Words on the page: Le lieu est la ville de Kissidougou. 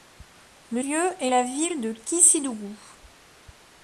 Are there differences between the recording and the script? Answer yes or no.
no